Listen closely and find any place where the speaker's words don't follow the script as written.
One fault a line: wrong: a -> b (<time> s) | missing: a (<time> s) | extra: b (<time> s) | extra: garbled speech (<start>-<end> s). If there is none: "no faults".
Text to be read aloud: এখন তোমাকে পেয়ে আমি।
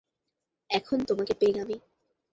no faults